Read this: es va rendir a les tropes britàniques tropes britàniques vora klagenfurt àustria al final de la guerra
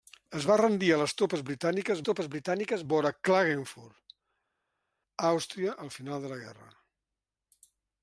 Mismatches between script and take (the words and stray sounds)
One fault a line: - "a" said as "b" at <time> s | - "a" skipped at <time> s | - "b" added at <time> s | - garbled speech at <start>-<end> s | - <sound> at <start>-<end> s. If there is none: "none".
none